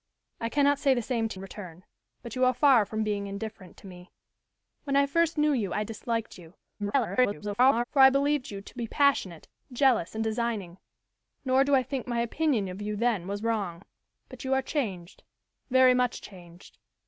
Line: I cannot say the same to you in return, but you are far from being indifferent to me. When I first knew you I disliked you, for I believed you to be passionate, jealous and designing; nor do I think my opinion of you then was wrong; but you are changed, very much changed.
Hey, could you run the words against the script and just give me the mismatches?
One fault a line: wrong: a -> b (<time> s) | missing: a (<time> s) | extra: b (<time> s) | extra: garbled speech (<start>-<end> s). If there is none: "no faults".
missing: you (1.4 s)
extra: garbled speech (6.8-7.8 s)